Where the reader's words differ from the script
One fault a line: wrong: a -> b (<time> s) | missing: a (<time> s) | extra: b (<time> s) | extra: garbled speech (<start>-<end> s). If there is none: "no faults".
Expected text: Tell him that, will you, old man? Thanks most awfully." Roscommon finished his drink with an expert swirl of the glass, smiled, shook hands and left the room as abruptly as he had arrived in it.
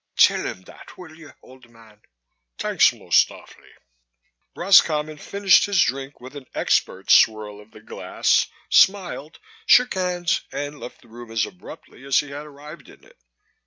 no faults